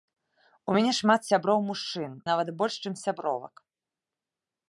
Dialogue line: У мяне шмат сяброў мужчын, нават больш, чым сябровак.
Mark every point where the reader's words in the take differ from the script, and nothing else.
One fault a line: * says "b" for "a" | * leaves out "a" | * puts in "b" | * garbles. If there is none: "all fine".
all fine